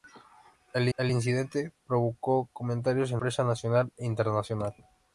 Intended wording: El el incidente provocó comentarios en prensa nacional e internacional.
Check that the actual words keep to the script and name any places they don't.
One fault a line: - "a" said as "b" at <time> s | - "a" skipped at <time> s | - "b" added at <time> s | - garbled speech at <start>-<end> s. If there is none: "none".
none